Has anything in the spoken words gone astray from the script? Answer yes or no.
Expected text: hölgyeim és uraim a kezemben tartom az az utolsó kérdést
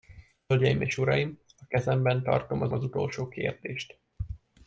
no